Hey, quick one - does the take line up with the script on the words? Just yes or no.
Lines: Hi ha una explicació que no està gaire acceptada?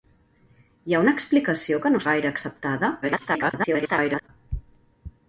no